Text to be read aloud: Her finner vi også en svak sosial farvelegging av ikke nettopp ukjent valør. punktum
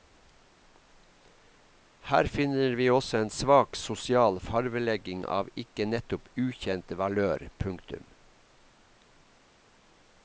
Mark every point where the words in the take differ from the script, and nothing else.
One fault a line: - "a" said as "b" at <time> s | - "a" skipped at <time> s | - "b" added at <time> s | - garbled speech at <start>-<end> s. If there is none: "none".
none